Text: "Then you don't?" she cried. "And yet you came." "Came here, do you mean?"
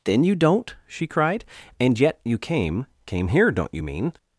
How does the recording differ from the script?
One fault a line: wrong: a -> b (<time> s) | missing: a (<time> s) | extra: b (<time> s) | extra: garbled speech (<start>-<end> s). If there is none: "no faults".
wrong: do -> don't (3.5 s)